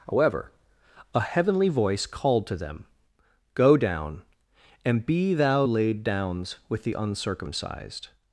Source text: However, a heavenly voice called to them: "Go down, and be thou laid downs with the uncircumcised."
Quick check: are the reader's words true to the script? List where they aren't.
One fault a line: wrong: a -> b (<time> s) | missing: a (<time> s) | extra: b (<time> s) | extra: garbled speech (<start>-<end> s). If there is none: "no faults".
no faults